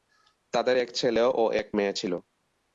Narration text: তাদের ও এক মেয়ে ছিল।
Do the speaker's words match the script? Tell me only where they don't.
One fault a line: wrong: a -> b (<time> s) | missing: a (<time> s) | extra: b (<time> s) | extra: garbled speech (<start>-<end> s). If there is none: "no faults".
extra: এক ছেলে (0.8 s)